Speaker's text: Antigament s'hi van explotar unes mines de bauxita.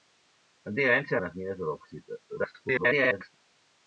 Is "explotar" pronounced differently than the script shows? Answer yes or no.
yes